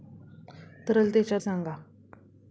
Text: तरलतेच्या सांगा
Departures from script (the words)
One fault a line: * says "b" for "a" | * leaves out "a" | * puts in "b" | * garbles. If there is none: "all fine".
all fine